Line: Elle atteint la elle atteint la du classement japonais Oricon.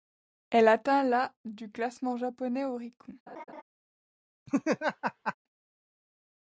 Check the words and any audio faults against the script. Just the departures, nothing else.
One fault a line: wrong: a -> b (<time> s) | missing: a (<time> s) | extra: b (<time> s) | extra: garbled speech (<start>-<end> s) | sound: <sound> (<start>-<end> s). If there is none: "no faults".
missing: elle atteint la (1.3 s)
sound: laugh (3.3-3.6 s)
sound: laugh (4.5-5.4 s)